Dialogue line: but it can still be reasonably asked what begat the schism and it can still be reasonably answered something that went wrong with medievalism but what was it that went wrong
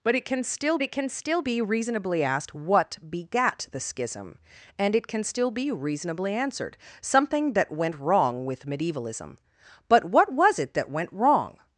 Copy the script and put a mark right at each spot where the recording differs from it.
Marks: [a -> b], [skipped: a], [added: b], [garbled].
but it can still [added: it can still] be reasonably asked what begat the schism and it can still be reasonably answered something that went wrong with medievalism but what was it that went wrong